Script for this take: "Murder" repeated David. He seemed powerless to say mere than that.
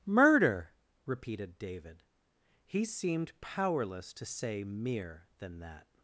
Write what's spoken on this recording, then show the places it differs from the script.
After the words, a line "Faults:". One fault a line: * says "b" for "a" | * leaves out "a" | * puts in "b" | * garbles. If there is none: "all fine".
"Murder" repeated David. He seemed powerless to say mere than that.
Faults:
all fine